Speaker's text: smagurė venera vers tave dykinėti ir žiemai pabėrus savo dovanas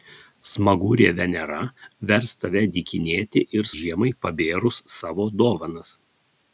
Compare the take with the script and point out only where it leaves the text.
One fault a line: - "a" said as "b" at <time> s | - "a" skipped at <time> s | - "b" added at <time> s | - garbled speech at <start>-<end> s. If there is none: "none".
none